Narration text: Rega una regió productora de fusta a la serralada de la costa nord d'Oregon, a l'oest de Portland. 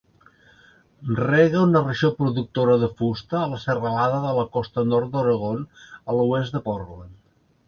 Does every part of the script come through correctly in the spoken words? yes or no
yes